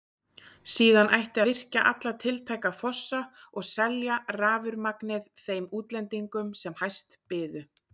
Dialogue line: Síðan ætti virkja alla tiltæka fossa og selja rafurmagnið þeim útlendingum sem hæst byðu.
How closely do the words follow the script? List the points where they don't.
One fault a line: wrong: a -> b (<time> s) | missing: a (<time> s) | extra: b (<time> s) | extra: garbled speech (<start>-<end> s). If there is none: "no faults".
no faults